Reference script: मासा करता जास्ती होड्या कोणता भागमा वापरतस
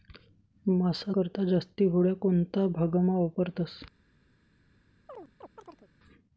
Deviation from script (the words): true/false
false